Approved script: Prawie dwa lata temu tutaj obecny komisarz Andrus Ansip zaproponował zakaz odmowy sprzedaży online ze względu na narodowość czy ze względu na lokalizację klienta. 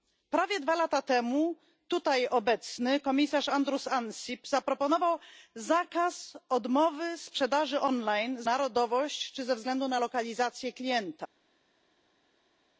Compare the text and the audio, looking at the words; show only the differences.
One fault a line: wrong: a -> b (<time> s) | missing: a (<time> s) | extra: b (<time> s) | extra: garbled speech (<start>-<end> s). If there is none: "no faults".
missing: ze względu na (8.4 s)